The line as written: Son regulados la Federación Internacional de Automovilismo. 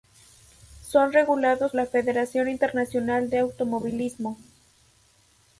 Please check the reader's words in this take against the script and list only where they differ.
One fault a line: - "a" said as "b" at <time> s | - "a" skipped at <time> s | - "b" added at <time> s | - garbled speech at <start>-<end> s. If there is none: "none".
none